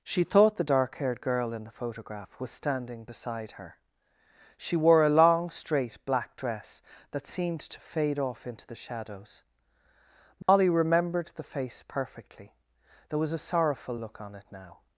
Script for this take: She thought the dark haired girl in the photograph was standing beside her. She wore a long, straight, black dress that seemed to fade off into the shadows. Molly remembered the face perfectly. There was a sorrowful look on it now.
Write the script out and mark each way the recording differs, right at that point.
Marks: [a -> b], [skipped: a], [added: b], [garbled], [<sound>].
She thought the dark haired girl in the photograph was standing beside her. She wore a long, straight, black dress that seemed to fade off into the shadows. Molly [dropout] remembered the face perfectly. There was a sorrowful look on it now.